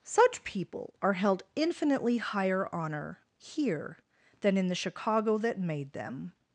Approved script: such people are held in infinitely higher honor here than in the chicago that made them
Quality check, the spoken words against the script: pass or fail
fail